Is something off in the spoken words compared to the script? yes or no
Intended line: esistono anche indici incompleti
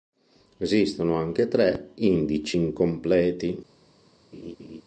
yes